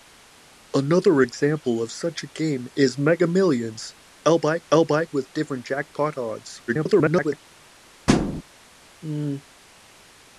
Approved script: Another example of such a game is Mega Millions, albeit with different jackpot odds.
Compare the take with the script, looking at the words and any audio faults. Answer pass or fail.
fail